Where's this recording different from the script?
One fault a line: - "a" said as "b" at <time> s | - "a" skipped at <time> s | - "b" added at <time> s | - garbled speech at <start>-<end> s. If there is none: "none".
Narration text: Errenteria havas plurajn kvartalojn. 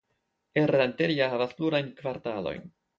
none